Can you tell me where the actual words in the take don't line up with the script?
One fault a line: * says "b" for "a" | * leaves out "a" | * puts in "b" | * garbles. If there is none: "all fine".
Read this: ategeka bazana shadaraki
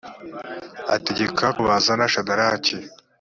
all fine